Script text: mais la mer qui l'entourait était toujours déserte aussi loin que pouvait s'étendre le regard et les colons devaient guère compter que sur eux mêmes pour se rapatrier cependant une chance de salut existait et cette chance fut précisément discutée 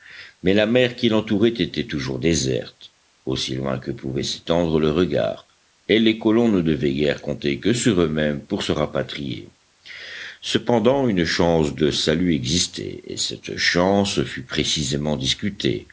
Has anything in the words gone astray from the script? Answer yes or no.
yes